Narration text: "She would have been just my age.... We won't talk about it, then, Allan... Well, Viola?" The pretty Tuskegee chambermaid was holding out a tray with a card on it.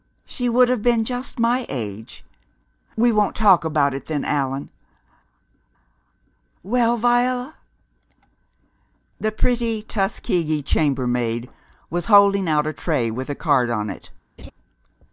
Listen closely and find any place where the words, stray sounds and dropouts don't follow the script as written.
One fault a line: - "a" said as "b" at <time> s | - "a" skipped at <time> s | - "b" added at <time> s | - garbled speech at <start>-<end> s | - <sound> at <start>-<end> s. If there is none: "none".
- laugh at 14.4-14.5 s